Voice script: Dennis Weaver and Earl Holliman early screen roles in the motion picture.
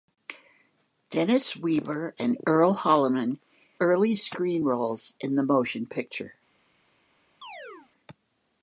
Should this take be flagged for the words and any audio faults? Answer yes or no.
yes